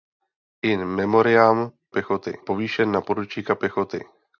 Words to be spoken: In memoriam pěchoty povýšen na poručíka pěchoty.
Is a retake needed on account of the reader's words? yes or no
no